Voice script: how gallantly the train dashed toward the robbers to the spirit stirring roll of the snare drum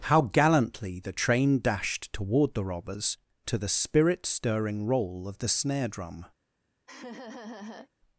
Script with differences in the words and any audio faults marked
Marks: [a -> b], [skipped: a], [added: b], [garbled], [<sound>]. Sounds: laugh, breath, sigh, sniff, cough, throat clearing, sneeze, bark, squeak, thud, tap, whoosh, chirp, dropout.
how gallantly the train dashed toward the robbers to the spirit stirring roll of the snare drum [laugh]